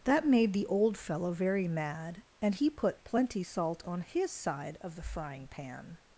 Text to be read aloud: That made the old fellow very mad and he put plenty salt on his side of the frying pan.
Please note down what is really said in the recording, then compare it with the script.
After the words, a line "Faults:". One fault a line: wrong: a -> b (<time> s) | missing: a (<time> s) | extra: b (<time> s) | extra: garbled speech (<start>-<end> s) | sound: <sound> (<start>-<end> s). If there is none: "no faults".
That made the old fellow very mad and he put plenty salt on his side of the frying pan.
Faults:
no faults